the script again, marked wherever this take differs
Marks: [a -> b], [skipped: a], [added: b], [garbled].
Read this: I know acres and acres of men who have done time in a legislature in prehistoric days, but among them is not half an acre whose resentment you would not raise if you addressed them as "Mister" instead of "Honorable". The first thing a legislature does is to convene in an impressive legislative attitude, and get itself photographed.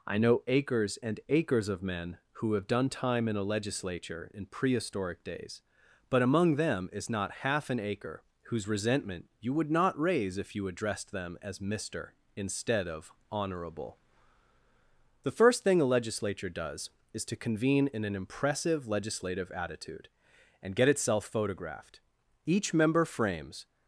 I know acres and acres of men who have done time in a legislature in prehistoric days, but among them is not half an acre whose resentment you would not raise if you addressed them as "Mister" instead of "Honorable". The first thing a legislature does is to convene in an impressive legislative attitude, and get itself photographed. [added: Each member frames]